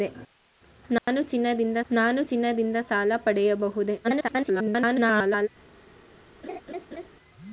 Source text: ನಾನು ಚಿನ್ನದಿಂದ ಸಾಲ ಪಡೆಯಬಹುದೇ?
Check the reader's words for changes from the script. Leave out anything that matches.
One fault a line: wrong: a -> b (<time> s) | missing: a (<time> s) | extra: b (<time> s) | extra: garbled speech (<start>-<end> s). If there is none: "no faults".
extra: ನಾನು ಚಿನ್ನದಿಂದ (1.9 s)
extra: garbled speech (4.0-5.5 s)